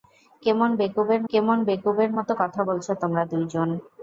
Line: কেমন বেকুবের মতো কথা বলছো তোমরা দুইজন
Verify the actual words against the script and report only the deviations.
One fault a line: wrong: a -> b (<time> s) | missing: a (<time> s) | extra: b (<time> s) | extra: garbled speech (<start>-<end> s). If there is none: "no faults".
extra: কেমন বেকুবের (1.3 s)